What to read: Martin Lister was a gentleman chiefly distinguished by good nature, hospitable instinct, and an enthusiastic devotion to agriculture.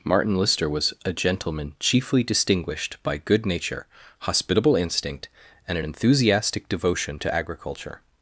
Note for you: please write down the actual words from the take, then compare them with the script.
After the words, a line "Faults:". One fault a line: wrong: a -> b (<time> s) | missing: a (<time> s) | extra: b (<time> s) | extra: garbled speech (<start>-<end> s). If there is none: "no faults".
Martin Lister was a gentleman chiefly distinguished by good nature, hospitable instinct, and an enthusiastic devotion to agriculture.
Faults:
no faults